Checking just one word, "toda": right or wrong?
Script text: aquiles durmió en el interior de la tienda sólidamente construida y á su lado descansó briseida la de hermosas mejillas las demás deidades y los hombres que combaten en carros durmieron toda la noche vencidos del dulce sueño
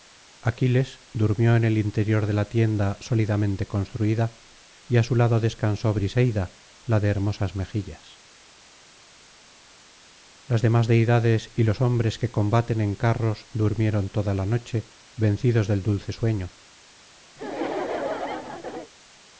right